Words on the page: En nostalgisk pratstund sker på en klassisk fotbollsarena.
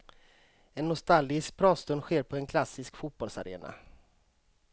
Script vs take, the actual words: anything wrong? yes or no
no